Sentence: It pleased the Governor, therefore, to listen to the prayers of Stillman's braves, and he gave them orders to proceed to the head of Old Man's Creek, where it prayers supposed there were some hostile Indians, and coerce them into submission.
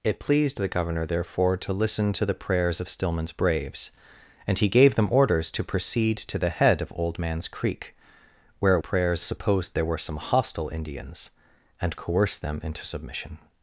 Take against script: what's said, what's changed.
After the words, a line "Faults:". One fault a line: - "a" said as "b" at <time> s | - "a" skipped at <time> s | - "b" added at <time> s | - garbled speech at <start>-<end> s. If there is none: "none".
It pleased the Governor, therefore, to listen to the prayers of Stillman's braves, and he gave them orders to proceed to the head of Old Man's Creek, where it prayers supposed there were some hostile Indians, and coerce them into submission.
Faults:
none